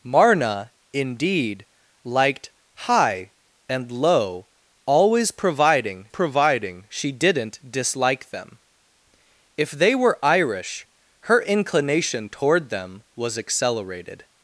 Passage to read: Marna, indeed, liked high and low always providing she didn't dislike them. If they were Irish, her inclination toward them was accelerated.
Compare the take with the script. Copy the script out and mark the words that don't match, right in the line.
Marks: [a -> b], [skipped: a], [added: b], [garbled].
Marna, indeed, liked high and low always providing [added: providing] she didn't dislike them. If they were Irish, her inclination toward them was accelerated.